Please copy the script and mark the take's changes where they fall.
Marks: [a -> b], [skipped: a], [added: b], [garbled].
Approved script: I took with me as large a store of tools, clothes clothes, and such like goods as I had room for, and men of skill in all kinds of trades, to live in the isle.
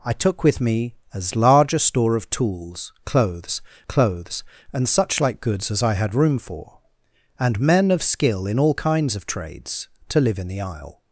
I took with me as large a store of tools, clothes clothes, and such like goods as I had room for, and men of skill in all kinds of trades, to live in the isle.